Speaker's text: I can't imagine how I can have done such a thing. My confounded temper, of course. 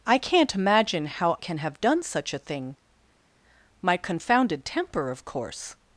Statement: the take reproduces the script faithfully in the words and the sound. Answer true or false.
false